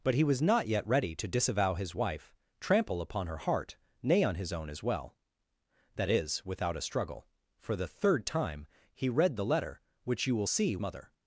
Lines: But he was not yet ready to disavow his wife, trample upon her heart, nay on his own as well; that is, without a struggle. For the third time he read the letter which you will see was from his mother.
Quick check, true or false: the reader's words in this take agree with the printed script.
false